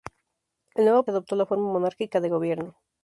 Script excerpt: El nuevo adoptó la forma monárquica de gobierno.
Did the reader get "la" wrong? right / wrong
right